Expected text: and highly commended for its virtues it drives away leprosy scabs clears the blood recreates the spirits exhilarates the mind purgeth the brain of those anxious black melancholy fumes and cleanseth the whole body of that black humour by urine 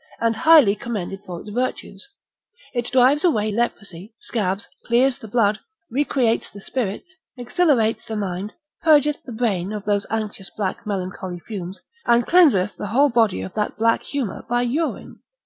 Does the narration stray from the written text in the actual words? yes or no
no